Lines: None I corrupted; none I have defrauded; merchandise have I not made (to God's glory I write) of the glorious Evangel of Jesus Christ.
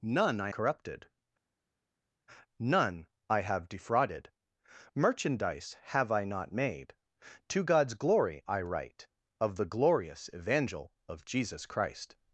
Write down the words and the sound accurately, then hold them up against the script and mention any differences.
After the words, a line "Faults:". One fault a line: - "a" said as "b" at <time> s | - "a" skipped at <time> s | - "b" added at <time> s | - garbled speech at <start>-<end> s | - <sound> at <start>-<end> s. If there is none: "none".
None I corrupted; none I have defrauded; merchandise have I not made (to God's glory I write) of the glorious Evangel of Jesus Christ.
Faults:
none